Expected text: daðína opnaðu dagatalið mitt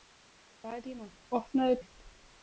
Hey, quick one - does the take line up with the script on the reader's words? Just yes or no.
no